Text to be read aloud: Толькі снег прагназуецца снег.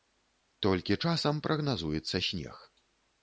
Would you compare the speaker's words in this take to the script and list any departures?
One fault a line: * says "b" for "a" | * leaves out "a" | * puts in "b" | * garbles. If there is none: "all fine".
* says "часам" for "снег"